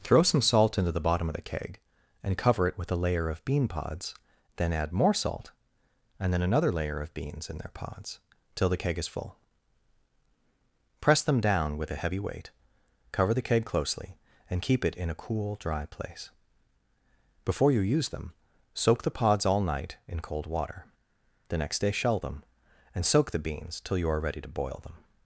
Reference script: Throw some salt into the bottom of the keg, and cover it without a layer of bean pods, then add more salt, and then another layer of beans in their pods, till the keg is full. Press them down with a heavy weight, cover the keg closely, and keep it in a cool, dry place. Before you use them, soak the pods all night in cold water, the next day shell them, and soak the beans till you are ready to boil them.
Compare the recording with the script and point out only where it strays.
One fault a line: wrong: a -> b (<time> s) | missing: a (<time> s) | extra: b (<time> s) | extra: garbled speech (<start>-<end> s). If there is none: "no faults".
wrong: without -> with (2.8 s)